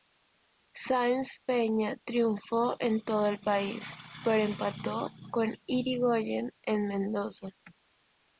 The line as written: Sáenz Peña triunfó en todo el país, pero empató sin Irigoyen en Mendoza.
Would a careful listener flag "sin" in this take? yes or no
yes